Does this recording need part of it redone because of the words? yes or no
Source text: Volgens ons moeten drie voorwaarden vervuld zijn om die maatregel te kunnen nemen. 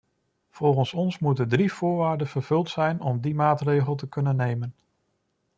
no